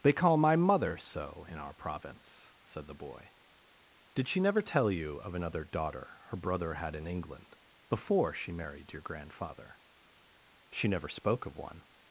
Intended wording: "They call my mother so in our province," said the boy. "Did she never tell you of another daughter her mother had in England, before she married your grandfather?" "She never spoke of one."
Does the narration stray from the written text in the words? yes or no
yes